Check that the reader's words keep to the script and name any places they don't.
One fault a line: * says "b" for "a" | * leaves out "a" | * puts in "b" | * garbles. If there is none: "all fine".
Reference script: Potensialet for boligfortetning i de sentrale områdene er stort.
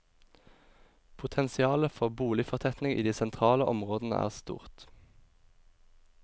all fine